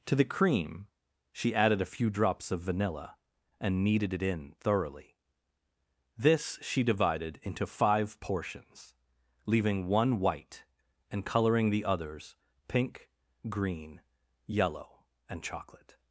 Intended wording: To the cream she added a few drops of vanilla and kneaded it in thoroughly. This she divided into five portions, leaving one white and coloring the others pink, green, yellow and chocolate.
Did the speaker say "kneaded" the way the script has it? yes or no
yes